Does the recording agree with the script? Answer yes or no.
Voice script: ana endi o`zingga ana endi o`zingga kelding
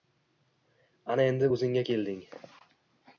no